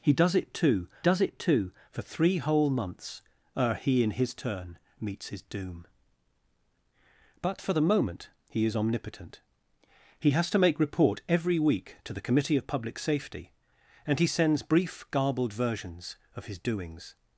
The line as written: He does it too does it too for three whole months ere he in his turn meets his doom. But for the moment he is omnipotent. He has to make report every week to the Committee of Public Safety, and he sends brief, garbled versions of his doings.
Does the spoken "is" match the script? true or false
true